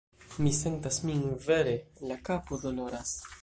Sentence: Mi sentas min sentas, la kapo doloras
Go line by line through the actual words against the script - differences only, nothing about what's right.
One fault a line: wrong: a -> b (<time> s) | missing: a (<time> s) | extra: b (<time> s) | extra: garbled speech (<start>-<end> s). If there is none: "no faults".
wrong: sentas -> vere (1.5 s)